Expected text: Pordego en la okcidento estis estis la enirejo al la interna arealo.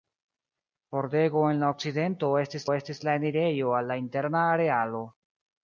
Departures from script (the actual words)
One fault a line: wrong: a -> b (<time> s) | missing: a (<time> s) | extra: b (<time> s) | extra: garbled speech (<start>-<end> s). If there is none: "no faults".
no faults